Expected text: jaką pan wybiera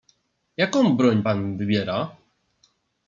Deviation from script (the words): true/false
true